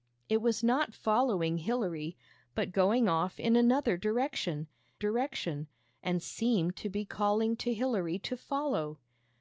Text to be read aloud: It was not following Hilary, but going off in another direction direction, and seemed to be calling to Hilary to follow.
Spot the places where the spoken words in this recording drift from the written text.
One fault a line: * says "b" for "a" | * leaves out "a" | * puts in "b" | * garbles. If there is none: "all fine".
all fine